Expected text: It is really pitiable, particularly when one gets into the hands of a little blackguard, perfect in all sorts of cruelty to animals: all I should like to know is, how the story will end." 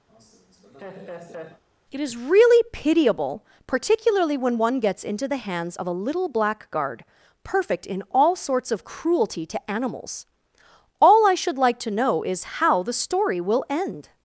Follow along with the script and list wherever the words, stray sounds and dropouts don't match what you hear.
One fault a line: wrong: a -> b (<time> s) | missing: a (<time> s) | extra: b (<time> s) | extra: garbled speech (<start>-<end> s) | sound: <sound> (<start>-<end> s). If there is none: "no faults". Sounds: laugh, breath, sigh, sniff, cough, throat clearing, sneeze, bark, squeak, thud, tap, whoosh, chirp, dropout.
sound: laugh (0.1-1.6 s)